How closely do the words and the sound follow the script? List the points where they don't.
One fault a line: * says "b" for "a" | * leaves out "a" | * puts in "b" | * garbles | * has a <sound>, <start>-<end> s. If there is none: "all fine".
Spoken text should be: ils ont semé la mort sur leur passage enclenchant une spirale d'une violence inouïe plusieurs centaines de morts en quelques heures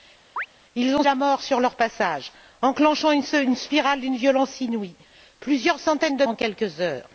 * has a chirp, 0.4-0.5 s
* leaves out "semé"
* leaves out "morts"